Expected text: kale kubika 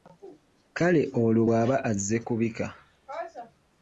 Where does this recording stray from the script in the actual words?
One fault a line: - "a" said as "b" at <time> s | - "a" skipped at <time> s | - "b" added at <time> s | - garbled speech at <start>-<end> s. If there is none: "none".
- "olwo bw'aba azze" added at 1.2 s